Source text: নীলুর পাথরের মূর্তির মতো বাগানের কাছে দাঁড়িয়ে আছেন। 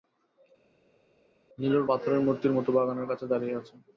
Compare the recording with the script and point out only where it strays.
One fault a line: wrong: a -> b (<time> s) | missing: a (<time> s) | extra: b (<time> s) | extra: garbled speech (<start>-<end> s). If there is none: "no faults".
no faults